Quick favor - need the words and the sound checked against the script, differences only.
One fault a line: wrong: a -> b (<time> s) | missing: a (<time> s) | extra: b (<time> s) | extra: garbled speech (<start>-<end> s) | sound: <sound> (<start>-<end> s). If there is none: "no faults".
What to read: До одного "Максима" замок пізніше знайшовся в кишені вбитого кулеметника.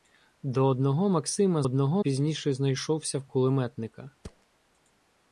wrong: замок -> одного (1.6 s)
missing: кишені вбитого (3.3 s)
sound: thud (4.2-4.5 s)